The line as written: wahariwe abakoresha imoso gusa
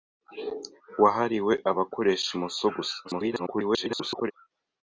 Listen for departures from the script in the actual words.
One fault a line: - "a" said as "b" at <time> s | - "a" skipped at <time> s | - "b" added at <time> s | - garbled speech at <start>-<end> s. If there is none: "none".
- garbled speech at 3.0-4.3 s